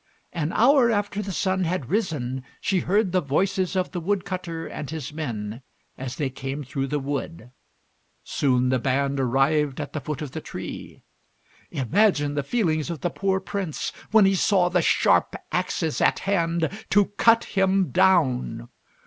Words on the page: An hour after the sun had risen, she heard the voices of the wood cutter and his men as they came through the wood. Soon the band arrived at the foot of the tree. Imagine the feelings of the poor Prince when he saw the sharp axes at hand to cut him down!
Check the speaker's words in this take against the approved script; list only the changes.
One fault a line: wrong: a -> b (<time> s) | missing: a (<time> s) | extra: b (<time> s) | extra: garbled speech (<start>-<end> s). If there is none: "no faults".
no faults